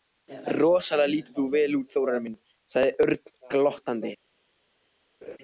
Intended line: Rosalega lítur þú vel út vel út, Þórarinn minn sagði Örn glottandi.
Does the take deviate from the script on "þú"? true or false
false